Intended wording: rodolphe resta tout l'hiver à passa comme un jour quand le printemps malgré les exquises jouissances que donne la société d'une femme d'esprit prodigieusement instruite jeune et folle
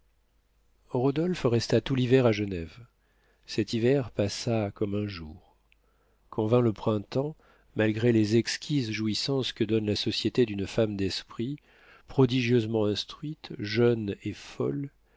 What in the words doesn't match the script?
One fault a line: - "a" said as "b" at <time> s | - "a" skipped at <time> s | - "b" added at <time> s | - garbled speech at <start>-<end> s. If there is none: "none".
- "genève cet hiver" added at 2.3 s
- "vint" added at 6.5 s